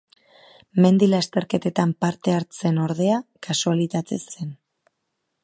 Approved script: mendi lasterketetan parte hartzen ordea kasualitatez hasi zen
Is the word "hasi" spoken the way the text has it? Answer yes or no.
no